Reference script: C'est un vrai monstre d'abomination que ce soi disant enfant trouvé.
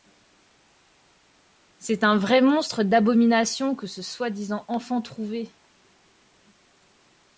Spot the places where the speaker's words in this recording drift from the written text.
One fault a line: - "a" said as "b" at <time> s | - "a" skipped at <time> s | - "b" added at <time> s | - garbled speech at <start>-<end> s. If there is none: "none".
none